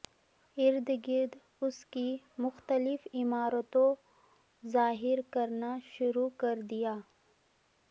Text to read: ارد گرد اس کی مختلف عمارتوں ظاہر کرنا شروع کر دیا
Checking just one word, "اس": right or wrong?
right